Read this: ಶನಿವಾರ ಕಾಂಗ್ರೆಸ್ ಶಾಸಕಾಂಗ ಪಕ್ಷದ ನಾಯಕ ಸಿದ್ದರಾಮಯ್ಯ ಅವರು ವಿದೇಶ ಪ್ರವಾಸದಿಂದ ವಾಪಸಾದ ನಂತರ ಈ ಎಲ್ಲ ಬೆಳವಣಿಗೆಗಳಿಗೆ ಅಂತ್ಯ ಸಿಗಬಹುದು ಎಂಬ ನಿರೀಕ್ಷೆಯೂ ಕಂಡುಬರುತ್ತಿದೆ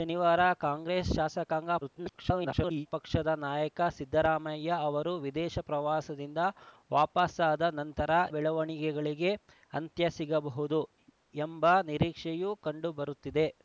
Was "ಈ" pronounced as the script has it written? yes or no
no